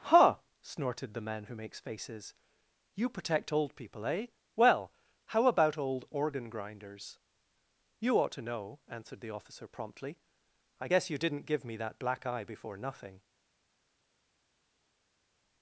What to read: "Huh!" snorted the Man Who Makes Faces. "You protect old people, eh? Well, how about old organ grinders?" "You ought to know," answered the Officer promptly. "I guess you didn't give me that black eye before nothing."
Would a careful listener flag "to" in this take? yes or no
no